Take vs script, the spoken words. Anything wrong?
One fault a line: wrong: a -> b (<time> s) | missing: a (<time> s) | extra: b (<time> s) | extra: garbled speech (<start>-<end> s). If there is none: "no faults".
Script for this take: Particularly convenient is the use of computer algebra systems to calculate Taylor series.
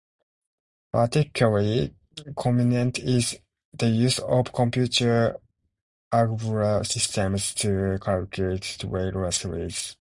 no faults